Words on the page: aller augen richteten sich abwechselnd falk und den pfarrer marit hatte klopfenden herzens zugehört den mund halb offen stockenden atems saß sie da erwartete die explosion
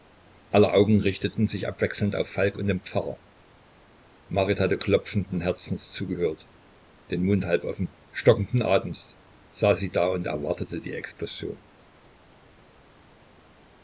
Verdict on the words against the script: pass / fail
fail